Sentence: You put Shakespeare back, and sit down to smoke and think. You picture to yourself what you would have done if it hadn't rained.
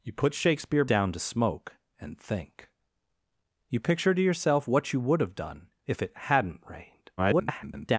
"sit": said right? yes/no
no